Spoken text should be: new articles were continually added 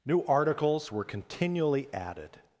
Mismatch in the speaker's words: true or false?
false